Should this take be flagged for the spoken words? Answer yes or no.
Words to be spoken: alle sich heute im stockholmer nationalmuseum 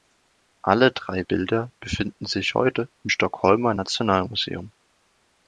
yes